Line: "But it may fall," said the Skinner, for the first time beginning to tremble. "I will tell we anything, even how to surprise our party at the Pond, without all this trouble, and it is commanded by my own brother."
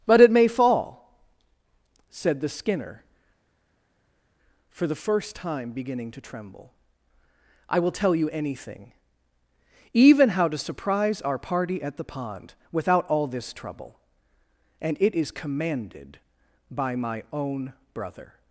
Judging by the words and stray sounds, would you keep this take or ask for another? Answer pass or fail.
fail